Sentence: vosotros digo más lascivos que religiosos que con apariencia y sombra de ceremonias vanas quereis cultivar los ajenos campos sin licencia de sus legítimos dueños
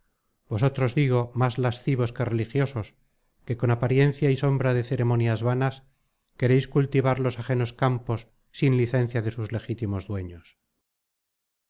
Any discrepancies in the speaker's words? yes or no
no